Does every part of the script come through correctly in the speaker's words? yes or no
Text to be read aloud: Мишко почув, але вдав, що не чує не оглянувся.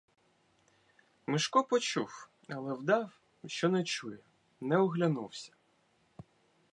yes